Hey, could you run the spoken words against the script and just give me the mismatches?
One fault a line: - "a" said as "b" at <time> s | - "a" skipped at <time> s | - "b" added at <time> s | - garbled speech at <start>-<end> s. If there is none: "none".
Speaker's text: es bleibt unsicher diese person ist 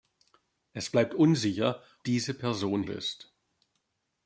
none